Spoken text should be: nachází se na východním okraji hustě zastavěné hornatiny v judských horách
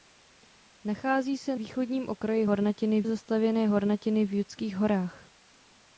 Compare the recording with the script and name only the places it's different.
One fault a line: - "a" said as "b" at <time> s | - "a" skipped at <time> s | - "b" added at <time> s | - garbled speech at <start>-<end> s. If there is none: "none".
- "na" skipped at 1.6 s
- "hustě" said as "hornatiny" at 2.4 s